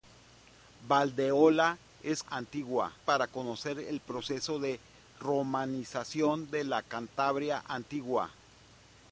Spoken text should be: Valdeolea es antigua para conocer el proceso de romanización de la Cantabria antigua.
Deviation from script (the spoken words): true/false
false